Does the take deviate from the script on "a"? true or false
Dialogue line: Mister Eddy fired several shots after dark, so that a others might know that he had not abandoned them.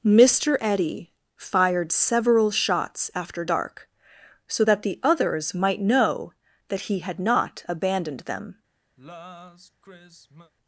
true